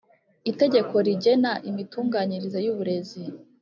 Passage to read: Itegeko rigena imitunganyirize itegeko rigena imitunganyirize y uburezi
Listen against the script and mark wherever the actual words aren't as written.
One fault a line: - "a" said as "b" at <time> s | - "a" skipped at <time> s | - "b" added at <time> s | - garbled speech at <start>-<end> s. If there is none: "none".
- "itegeko rigena imitunganyirize" skipped at 2.6 s